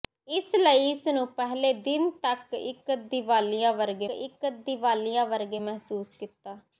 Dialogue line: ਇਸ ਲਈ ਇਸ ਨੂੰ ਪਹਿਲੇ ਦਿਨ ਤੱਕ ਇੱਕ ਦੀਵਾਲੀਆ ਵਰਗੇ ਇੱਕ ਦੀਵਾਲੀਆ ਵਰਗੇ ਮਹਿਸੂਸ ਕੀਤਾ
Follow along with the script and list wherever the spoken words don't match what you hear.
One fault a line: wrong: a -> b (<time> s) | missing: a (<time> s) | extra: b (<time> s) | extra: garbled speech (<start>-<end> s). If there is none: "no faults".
no faults